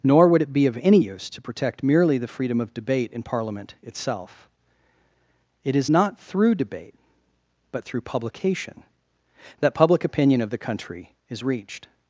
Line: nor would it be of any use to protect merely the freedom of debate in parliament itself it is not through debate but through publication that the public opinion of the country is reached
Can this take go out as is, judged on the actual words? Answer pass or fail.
fail